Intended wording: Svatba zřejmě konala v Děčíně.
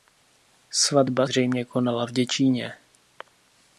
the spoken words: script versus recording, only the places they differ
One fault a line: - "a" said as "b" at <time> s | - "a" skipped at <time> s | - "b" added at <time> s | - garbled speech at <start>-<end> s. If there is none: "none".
none